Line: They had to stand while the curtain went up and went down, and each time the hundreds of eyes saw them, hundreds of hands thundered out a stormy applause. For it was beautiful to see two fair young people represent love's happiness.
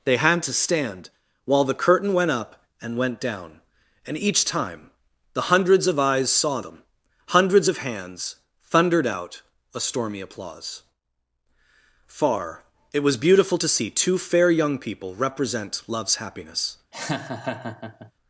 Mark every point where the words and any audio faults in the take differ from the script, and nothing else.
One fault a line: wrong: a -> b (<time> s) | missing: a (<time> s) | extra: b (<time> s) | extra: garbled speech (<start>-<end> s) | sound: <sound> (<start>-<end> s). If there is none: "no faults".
wrong: For -> Far (12.1 s)
sound: laugh (16.9-18.1 s)